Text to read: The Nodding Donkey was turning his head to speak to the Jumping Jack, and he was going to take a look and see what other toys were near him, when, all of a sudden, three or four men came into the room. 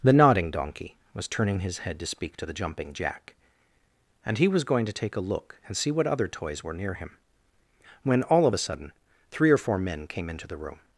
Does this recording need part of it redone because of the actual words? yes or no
no